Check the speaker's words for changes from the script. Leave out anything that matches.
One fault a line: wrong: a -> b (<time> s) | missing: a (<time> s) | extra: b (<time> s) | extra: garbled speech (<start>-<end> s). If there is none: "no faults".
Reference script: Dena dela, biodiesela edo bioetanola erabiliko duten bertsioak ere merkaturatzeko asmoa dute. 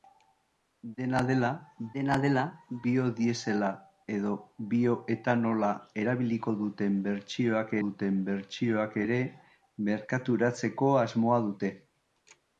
extra: dena dela (2.0 s)
extra: duten bertsioak (7.8 s)